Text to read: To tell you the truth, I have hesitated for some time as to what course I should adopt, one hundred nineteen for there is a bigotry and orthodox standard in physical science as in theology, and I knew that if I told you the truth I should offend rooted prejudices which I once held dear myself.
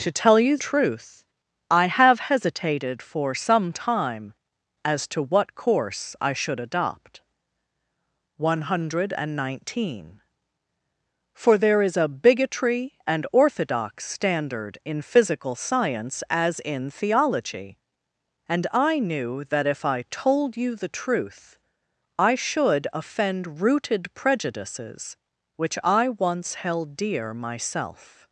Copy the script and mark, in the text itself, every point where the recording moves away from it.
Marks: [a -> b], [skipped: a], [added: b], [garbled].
To tell you [skipped: the] truth, I have hesitated for some time as to what course I should adopt, one hundred nineteen for there is a bigotry and orthodox standard in physical science as in theology, and I knew that if I told you the truth I should offend rooted prejudices which I once held dear myself.